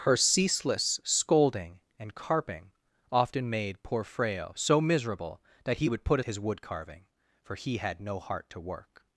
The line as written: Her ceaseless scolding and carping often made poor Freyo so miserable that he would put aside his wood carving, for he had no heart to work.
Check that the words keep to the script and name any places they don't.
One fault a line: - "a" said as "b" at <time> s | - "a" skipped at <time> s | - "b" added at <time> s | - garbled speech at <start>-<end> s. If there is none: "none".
- "aside" skipped at 6.2 s